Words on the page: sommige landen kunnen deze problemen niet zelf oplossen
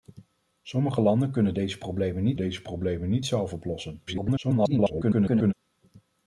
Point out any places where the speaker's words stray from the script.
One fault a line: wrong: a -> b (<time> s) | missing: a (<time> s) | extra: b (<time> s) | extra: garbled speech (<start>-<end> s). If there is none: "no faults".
extra: deze problemen niet (2.4 s)
extra: garbled speech (4.1-5.5 s)